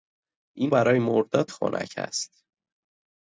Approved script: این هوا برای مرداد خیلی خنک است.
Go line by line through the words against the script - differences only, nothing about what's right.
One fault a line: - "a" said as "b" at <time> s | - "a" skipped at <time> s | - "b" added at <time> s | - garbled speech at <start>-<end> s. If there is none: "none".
- "هوا" skipped at 0.7 s
- "خیلی" skipped at 1.5 s